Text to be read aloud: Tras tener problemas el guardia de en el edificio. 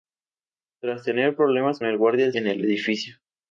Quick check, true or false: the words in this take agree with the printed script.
true